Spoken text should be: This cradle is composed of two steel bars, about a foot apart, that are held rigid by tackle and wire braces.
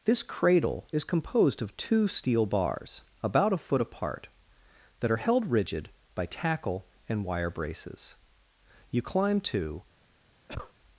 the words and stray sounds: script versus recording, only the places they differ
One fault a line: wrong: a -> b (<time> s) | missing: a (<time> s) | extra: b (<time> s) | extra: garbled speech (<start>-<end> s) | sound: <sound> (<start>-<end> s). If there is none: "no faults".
extra: You climb to (8.9 s)
sound: cough (10.5-10.7 s)